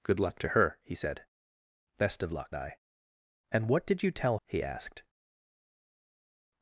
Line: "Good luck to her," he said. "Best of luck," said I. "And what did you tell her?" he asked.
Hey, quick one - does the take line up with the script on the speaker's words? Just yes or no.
no